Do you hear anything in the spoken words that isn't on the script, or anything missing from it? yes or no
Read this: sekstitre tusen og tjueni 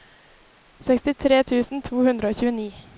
yes